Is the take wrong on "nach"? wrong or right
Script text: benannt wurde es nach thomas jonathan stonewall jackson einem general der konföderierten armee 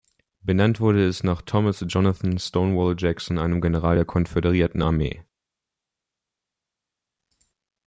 right